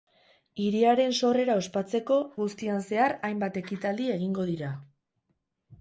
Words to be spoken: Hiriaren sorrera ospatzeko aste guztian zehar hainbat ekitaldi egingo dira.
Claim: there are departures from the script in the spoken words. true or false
true